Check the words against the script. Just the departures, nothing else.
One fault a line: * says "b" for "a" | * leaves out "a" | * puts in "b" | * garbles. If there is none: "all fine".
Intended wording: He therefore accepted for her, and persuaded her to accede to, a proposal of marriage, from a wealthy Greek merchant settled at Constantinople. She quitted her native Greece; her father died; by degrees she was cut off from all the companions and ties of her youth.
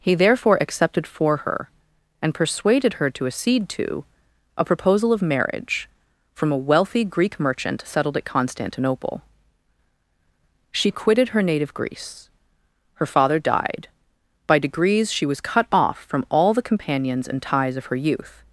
all fine